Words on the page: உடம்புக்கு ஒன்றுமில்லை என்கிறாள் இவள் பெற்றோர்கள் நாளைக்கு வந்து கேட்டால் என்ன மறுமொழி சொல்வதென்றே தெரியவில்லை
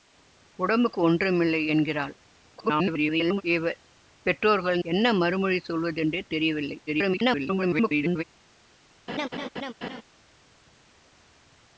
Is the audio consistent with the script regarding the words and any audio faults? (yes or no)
no